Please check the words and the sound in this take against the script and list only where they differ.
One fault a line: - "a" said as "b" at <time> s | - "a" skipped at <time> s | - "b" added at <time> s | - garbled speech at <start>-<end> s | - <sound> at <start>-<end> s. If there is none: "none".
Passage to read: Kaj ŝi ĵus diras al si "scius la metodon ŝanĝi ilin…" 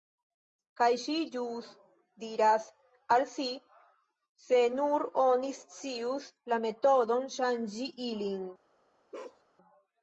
- "se nur oni" added at 4.5 s
- bark at 9.1-9.4 s